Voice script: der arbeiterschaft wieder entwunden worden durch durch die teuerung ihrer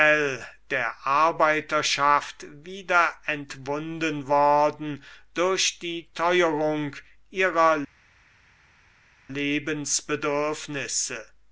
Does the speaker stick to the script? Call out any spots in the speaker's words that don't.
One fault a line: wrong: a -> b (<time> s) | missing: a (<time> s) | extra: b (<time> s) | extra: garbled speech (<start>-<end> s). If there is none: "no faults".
missing: durch (5.8 s)